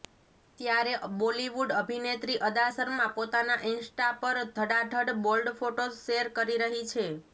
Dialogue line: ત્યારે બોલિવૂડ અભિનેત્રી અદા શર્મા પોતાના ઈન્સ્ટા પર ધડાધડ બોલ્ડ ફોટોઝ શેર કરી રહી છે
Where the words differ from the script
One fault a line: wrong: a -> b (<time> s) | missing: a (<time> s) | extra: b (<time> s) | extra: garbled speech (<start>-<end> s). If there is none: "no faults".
no faults